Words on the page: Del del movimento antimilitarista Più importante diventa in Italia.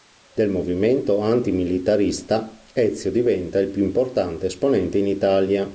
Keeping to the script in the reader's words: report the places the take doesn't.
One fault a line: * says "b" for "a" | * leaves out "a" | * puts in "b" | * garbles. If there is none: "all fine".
* leaves out "del"
* puts in "Ezio diventa il"
* says "esponente" for "diventa"